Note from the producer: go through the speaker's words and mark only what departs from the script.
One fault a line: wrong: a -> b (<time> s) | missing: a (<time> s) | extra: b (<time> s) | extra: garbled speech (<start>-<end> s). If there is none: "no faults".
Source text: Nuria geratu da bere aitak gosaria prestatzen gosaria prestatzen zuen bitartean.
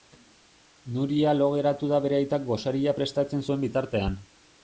extra: lo (1.4 s)
missing: gosaria prestatzen (3.4 s)